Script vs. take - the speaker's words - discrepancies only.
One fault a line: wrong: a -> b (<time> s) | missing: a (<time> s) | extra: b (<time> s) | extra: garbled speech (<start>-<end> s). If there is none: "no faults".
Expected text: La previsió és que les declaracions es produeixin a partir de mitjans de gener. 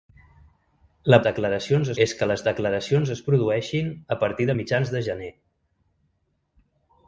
wrong: previsió -> declaracions (1.3 s)